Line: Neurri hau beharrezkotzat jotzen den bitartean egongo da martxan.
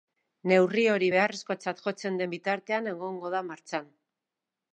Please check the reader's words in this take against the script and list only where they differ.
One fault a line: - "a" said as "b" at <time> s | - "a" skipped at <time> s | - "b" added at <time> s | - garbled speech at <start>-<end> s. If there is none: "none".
- "hau" said as "hori" at 0.9 s